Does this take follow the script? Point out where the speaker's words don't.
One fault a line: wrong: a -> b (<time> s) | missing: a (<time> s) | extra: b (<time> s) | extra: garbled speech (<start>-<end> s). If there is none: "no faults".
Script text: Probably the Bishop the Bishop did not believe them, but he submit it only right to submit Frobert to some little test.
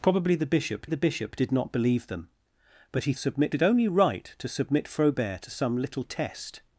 no faults